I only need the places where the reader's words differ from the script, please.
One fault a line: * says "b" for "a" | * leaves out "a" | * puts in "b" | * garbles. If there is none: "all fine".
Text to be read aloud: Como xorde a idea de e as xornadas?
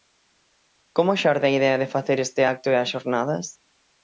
* puts in "facer este acto"